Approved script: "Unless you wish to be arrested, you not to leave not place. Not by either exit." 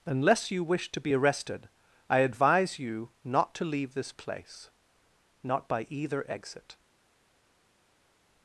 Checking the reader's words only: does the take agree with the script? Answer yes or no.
no